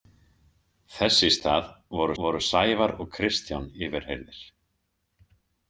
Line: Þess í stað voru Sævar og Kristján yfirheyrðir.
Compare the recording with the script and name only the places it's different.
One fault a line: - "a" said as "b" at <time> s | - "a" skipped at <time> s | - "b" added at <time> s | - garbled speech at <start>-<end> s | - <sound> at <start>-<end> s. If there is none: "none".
- "voru" added at 2.2 s